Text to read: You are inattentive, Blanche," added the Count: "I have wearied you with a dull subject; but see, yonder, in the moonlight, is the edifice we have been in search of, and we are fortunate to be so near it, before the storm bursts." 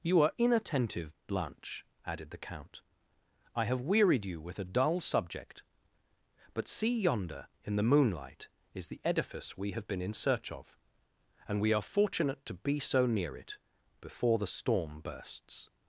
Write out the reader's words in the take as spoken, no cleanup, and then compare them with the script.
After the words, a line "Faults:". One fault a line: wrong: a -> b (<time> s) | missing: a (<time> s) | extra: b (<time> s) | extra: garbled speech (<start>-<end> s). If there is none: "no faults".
You are inattentive, Blanche," added the Count: "I have wearied you with a dull subject; but see, yonder, in the moonlight, is the edifice we have been in search of, and we are fortunate to be so near it, before the storm bursts."
Faults:
no faults